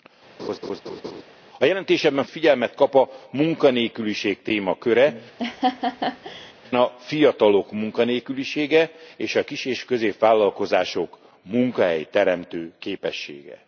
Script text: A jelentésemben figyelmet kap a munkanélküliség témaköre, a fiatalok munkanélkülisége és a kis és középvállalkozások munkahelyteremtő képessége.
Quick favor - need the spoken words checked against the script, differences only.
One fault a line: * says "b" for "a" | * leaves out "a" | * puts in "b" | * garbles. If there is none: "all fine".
all fine